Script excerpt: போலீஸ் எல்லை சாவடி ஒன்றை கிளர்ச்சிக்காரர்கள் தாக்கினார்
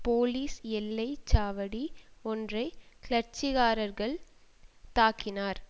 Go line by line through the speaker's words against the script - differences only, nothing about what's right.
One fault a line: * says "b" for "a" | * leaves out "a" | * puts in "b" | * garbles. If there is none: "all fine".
all fine